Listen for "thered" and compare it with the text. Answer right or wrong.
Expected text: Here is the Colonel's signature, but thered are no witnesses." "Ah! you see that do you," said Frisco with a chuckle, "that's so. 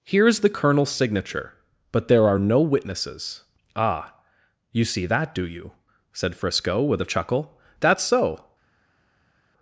wrong